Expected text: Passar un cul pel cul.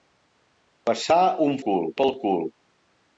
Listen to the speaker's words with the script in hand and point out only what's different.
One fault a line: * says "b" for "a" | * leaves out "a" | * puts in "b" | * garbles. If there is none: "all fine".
all fine